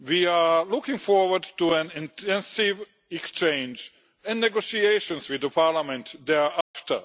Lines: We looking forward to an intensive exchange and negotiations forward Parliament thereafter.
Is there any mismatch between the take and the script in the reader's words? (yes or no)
yes